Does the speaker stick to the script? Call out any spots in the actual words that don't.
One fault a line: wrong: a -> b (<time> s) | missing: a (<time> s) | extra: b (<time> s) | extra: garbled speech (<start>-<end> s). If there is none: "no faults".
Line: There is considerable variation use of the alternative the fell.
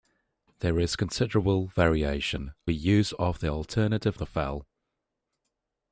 no faults